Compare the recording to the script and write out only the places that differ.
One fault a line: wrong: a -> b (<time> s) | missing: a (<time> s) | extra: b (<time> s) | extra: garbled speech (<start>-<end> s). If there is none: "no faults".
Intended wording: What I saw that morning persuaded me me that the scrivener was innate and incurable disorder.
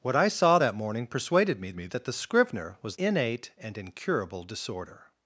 no faults